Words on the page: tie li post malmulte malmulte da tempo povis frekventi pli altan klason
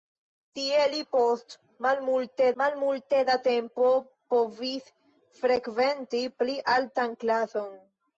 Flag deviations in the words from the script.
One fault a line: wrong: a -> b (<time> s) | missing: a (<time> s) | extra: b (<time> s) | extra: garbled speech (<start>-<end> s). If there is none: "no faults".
no faults